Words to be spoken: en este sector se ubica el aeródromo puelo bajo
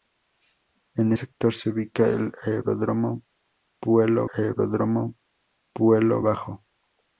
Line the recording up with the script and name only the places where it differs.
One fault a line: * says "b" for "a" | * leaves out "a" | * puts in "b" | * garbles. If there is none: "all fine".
* leaves out "este"
* puts in "aeródromo puelo"